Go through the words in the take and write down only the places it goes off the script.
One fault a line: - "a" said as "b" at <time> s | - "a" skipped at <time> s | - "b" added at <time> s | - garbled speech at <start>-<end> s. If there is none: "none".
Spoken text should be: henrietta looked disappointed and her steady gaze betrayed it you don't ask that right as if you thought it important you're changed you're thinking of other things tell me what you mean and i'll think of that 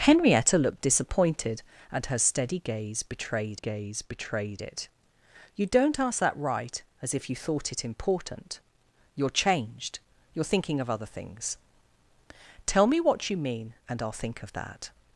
- "gaze betrayed" added at 3.5 s